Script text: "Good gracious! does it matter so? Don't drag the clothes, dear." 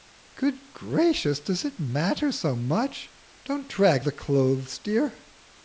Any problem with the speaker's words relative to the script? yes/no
yes